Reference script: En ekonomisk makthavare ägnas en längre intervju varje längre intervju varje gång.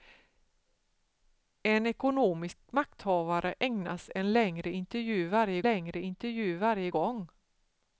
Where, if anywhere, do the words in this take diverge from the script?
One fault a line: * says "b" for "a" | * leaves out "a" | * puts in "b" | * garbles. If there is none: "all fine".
all fine